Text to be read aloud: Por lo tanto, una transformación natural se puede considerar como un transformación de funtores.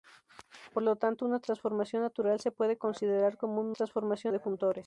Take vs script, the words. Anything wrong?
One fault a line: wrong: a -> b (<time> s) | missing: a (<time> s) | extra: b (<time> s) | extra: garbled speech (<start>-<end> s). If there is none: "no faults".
no faults